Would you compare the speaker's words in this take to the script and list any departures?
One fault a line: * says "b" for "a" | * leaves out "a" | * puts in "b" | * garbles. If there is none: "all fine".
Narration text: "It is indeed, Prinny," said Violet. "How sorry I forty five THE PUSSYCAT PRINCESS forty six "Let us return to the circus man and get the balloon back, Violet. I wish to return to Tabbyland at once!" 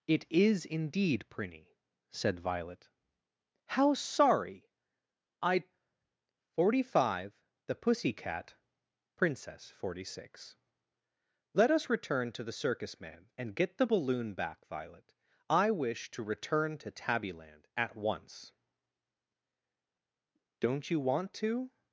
* puts in "Don't you want to"